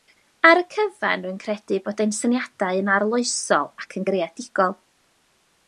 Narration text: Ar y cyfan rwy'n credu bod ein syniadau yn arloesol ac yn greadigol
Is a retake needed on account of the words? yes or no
no